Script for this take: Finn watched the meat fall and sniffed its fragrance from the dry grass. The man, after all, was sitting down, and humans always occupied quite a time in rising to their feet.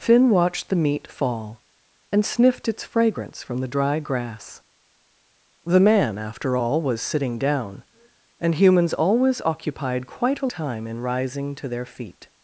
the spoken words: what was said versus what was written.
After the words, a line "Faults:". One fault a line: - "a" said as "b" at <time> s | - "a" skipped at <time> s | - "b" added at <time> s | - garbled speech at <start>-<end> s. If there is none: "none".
Finn watched the meat fall and sniffed its fragrance from the dry grass. The man, after all, was sitting down, and humans always occupied quite a time in rising to their feet.
Faults:
none